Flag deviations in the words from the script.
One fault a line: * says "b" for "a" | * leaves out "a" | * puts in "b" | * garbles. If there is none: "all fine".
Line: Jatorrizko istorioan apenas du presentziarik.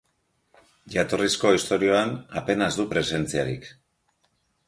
all fine